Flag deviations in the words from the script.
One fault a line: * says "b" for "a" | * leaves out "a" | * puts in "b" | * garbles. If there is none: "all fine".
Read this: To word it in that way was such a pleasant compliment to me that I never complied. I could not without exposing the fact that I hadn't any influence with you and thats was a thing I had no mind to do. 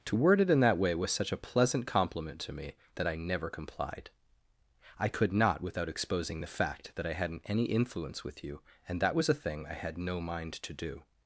* says "that" for "thats"